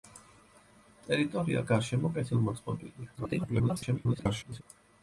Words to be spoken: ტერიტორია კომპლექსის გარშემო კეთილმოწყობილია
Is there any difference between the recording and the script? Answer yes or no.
yes